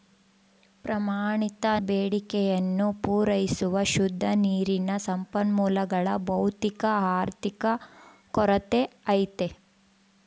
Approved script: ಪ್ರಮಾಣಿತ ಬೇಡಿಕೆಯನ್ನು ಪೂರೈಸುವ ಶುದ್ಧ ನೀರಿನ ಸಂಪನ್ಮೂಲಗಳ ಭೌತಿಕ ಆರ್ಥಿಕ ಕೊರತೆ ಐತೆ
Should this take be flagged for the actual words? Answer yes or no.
no